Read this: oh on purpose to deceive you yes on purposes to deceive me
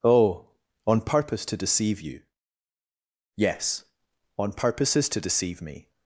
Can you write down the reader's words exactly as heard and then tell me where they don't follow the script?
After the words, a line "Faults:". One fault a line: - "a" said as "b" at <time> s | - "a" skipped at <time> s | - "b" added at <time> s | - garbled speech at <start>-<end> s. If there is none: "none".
oh on purpose to deceive you yes on purposes to deceive me
Faults:
none